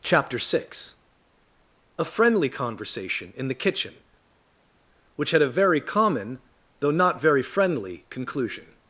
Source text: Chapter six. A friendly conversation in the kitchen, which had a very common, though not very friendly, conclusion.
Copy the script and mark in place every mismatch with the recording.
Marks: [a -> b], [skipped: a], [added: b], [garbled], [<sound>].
Chapter six. A friendly conversation in the kitchen, which had a very common, though not very friendly, conclusion.